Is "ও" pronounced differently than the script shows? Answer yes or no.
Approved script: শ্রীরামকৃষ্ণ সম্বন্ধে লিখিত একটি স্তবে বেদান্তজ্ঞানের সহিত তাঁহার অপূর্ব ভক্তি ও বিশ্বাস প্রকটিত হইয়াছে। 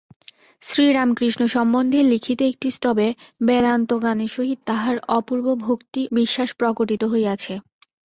yes